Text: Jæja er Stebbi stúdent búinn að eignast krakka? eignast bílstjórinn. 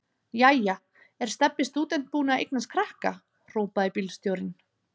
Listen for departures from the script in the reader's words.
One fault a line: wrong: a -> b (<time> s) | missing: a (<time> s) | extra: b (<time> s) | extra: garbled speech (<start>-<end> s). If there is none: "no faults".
wrong: eignast -> hrópaði (3.5 s)